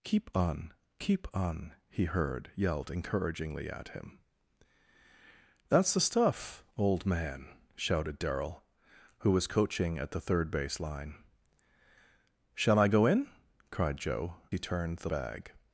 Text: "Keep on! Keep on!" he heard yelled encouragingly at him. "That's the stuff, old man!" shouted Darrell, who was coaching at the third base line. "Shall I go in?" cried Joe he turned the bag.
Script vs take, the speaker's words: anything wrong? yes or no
no